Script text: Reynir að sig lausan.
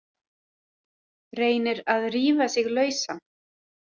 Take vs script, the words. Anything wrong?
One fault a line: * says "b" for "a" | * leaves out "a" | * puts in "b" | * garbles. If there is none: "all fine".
* puts in "rífa"